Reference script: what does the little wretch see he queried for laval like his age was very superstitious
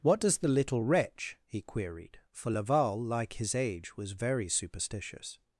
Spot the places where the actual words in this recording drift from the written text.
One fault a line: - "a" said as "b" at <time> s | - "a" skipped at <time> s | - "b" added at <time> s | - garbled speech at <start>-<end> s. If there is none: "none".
- "see" skipped at 1.4 s